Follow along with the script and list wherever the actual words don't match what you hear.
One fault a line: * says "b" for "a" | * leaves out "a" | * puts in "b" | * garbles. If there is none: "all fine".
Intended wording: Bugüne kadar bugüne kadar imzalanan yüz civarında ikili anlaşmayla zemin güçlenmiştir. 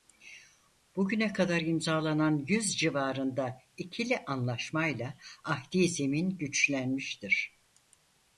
* leaves out "bugüne kadar"
* puts in "ahdi"